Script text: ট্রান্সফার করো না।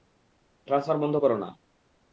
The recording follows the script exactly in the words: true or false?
false